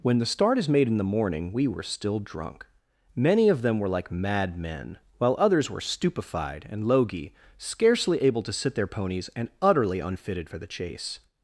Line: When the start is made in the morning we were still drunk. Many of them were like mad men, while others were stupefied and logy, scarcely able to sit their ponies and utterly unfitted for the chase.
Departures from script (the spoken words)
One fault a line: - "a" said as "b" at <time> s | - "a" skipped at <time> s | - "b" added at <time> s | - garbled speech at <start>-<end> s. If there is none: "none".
none